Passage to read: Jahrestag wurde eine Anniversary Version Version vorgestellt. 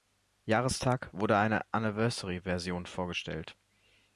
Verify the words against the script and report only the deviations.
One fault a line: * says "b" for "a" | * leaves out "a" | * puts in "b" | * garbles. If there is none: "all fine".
* leaves out "Version"